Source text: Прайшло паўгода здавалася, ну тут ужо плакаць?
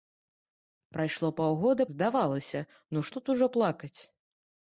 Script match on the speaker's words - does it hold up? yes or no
yes